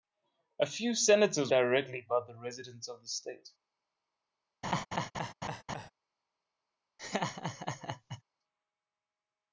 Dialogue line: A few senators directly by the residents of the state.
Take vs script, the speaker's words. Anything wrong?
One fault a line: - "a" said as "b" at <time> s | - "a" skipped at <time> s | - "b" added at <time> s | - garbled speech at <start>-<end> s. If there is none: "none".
none